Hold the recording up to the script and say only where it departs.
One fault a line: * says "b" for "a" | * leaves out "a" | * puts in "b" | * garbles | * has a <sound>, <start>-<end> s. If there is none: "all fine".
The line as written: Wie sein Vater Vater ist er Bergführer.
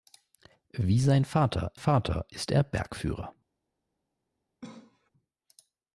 * has a cough, 4.6-5.1 s